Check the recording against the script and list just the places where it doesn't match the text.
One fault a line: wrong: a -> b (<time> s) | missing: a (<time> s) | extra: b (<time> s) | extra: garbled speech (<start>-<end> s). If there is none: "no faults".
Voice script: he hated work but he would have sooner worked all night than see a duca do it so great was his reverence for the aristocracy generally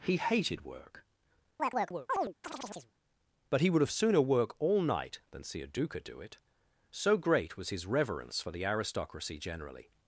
wrong: worked -> work (4.2 s)